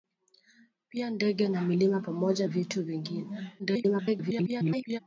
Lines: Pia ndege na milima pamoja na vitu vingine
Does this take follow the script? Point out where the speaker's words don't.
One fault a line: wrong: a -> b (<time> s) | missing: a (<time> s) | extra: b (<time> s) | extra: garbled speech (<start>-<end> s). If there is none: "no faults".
missing: na (2.5 s)
extra: garbled speech (3.6-5.0 s)